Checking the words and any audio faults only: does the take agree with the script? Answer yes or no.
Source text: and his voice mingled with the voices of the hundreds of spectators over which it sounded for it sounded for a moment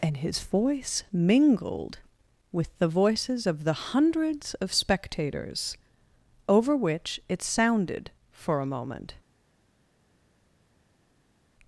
no